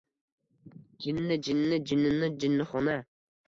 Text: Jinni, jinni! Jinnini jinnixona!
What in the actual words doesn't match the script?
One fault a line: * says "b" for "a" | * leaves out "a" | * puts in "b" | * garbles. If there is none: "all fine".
all fine